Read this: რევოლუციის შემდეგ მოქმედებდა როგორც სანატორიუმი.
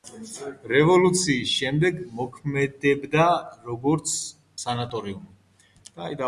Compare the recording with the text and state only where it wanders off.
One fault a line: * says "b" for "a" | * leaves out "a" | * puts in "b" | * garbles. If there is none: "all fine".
all fine